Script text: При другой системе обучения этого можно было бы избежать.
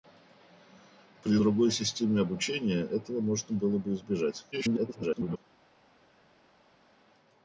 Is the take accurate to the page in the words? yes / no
no